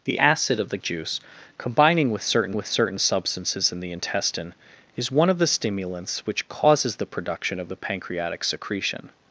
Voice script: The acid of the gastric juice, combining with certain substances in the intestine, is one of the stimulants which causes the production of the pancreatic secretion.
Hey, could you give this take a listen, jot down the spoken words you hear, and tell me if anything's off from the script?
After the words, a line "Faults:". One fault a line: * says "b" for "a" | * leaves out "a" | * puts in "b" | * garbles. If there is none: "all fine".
The acid of the juice, combining with certain with certain substances in the intestine, is one of the stimulants which causes the production of the pancreatic secretion.
Faults:
* leaves out "gastric"
* puts in "with certain"